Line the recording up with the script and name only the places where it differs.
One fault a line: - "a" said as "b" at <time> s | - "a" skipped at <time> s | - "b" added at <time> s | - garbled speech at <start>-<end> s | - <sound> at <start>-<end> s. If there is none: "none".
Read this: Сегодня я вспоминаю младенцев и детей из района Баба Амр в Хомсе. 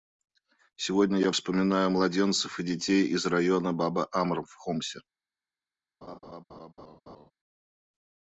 - laugh at 6.0-7.3 s